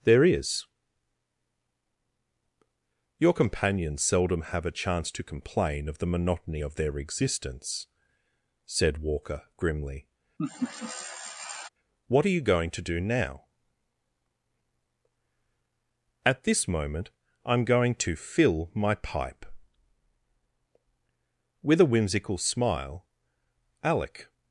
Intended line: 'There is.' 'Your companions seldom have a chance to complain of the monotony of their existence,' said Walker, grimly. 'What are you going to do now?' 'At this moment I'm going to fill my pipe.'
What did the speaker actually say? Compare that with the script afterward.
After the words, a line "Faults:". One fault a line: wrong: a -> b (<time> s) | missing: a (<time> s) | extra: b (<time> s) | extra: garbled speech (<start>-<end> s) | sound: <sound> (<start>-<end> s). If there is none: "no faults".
'There is.' 'Your companions seldom have a chance to complain of the monotony of their existence,' said Walker, grimly. 'What are you going to do now?' 'At this moment I'm going to fill my pipe.' With a whimsical smile, Alec
Faults:
sound: laugh (10.4-11.7 s)
extra: With a whimsical smile Alec (21.6 s)